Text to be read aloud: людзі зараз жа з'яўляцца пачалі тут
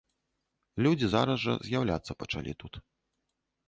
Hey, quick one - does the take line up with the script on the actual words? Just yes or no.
yes